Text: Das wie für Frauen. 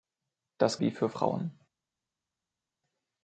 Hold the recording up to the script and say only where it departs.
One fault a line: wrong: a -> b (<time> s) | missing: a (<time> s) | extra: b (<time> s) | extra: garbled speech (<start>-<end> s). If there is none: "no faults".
no faults